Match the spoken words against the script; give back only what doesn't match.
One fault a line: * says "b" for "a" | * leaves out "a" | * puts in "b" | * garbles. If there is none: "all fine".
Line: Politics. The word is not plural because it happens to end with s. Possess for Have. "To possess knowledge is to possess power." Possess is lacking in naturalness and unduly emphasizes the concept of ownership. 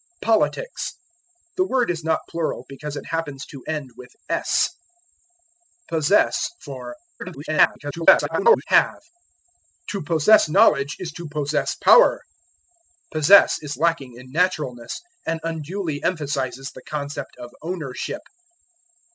* garbles